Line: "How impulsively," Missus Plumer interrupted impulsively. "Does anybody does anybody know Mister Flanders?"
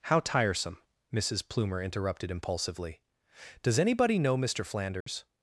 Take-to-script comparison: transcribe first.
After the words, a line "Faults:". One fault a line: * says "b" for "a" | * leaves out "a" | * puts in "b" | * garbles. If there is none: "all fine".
"How tiresome," Missus Plumer interrupted impulsively. "Does anybody know Mister Flanders?"
Faults:
* says "tiresome" for "impulsively"
* leaves out "does anybody"